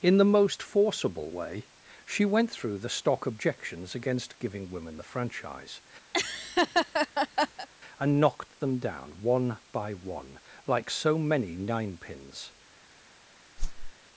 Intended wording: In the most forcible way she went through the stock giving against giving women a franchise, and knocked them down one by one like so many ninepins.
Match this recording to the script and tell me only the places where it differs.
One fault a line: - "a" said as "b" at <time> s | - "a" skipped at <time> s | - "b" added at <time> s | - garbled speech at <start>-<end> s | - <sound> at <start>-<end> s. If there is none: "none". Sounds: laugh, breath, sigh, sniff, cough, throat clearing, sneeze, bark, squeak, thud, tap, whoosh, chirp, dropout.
- "giving" said as "objections" at 3.2 s
- "a" said as "the" at 5.0 s
- laugh at 6.1-7.7 s
- whoosh at 13.6-13.9 s